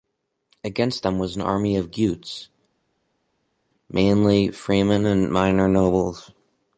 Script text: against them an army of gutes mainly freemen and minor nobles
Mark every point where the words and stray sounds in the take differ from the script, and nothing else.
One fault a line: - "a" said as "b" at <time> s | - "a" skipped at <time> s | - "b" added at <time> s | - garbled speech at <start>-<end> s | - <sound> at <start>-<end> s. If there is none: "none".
- "was" added at 1.2 s